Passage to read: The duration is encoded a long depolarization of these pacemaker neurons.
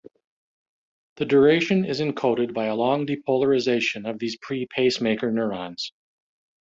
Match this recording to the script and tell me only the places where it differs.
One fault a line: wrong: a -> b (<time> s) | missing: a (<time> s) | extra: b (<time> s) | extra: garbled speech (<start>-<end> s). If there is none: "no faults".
extra: by (2.5 s)
extra: pre (4.4 s)